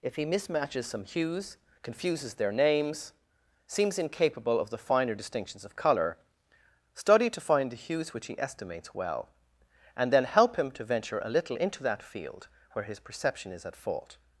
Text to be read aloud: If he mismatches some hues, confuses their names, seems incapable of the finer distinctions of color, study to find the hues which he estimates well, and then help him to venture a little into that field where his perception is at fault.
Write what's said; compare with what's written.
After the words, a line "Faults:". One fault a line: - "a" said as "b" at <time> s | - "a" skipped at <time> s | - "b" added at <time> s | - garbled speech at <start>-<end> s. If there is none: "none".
If he mismatches some hues, confuses their names, seems incapable of the finer distinctions of color, study to find the hues which he estimates well, and then help him to venture a little into that field where his perception is at fault.
Faults:
none